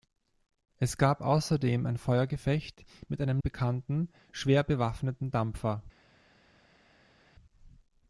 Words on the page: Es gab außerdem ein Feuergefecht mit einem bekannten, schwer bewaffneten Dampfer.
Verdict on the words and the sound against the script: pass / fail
pass